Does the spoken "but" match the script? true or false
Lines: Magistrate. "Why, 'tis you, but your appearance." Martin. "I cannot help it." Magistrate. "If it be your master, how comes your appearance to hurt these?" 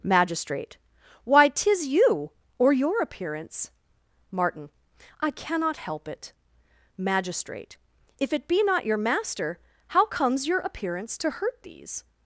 false